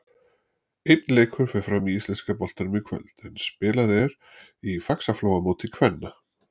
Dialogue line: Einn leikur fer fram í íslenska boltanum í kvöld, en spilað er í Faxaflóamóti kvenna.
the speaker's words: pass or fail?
pass